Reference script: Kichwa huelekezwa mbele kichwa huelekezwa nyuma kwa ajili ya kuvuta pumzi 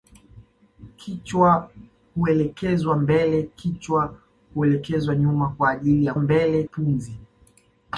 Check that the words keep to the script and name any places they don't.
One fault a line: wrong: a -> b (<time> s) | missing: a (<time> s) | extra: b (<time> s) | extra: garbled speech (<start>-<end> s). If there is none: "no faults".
wrong: kuvuta -> mbele (6.2 s)